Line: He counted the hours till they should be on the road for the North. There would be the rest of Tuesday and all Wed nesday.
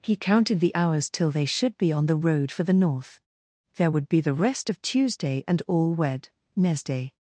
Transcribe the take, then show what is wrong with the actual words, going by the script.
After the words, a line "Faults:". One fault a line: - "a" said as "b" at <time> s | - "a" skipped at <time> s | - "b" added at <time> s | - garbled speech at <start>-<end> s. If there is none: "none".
He counted the hours till they should be on the road for the North. There would be the rest of Tuesday and all Wed nesday.
Faults:
none